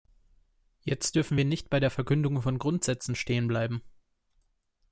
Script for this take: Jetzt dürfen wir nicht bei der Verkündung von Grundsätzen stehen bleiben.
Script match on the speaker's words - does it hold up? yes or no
yes